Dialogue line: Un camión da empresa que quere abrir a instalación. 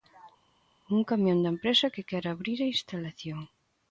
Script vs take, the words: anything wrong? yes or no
no